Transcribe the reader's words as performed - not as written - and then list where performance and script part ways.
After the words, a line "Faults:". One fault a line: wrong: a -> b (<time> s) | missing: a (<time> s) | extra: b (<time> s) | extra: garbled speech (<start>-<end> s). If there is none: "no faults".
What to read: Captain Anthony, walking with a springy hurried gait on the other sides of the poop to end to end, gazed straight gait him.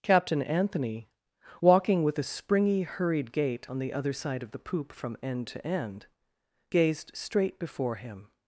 Captain Anthony, walking with a springy hurried gait on the other side of the poop from end to end, gazed straight before him.
Faults:
wrong: sides -> side (4.1 s)
wrong: to -> from (4.9 s)
wrong: gait -> before (7.6 s)